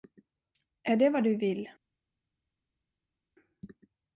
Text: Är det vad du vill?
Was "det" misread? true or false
false